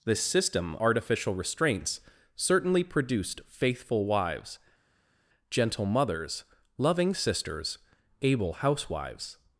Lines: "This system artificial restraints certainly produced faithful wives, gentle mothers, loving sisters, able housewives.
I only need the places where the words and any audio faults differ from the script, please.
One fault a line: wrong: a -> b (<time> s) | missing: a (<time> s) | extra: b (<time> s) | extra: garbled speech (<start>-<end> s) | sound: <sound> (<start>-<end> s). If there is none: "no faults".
no faults